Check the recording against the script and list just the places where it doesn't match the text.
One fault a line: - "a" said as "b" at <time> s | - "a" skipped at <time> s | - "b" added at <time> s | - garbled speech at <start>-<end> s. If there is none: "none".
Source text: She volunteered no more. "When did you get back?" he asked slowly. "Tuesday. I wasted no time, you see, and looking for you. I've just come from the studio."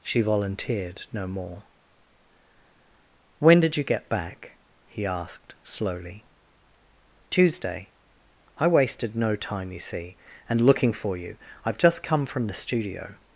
none